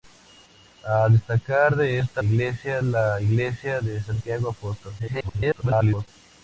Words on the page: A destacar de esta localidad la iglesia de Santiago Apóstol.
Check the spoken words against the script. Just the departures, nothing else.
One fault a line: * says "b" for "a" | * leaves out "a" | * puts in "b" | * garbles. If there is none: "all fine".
* says "iglesia" for "localidad"
* garbles